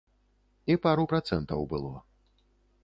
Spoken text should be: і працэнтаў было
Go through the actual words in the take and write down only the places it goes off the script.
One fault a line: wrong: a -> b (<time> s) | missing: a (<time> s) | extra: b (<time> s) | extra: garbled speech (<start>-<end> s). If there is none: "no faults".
extra: пару (0.8 s)